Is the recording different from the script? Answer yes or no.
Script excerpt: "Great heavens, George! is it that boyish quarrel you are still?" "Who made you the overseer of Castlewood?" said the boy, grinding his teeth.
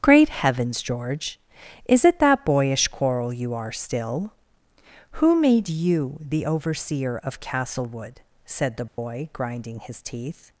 no